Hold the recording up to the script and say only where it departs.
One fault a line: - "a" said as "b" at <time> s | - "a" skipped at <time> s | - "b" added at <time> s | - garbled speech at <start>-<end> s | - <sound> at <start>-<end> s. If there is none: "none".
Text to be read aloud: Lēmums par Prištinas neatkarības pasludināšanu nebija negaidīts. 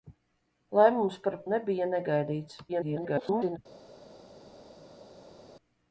- "Prištinas neatkarības pasludināšanu" skipped at 1.4 s
- garbled speech at 2.7-3.6 s